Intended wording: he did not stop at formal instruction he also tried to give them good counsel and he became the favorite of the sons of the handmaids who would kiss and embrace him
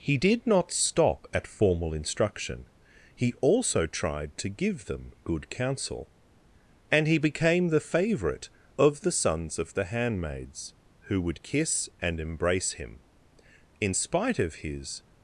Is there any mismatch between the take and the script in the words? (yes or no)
yes